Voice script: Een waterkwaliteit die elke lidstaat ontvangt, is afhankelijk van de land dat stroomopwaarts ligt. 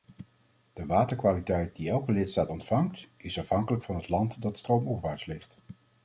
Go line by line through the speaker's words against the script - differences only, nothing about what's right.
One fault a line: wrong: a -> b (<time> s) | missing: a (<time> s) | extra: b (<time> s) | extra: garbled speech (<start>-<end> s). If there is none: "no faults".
wrong: Een -> De (0.7 s)
wrong: de -> het (3.9 s)